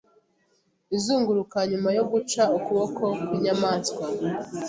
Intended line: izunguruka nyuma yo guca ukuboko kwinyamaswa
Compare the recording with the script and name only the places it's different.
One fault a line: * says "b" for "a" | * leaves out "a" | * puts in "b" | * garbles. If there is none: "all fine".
all fine